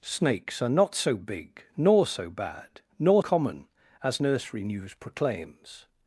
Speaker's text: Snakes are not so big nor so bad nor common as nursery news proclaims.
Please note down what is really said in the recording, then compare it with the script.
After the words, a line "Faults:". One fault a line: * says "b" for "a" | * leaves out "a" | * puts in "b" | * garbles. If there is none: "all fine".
Snakes are not so big nor so bad nor common as nursery news proclaims.
Faults:
all fine